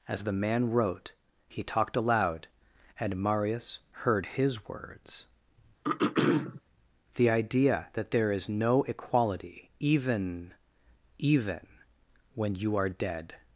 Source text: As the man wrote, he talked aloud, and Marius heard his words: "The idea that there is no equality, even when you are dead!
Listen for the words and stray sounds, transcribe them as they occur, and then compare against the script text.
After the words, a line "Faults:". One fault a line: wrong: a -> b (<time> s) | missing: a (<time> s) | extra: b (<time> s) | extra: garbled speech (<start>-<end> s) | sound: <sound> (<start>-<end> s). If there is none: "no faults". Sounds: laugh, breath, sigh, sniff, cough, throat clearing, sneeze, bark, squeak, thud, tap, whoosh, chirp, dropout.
As the man wrote, he talked aloud, and Marius heard his words: "The idea that there is no equality, even even when you are dead!
Faults:
sound: throat clearing (5.8-6.6 s)
extra: even (11.2 s)